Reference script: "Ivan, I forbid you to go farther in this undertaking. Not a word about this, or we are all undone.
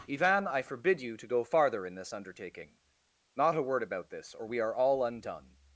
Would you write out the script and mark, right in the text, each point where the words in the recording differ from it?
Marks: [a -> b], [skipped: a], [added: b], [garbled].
"Ivan, I forbid you to go farther in this undertaking. Not a word about this, or we are all undone.